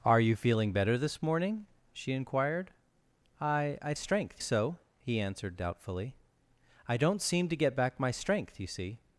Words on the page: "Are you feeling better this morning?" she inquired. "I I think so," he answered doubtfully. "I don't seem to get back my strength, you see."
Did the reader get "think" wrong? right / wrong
wrong